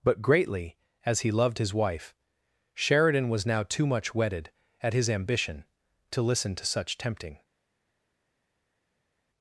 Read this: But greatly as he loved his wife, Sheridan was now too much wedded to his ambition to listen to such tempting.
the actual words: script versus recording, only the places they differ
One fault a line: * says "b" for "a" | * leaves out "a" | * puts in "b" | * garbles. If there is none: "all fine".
* says "at" for "to"